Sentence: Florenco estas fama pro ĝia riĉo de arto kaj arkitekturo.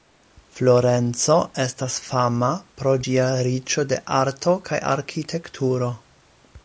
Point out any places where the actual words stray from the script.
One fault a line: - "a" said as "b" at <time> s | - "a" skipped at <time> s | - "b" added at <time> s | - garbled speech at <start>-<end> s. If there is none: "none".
none